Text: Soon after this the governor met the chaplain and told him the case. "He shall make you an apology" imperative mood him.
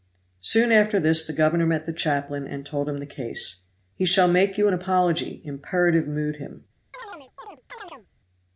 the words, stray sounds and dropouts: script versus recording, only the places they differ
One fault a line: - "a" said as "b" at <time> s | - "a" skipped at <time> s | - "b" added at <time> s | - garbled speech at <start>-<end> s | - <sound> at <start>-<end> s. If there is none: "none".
- chirp at 6.9-8.1 s